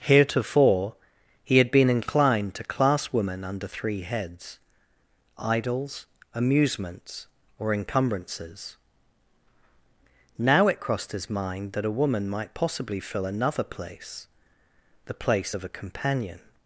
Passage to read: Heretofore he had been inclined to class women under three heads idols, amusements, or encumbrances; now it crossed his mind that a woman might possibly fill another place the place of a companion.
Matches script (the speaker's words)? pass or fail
pass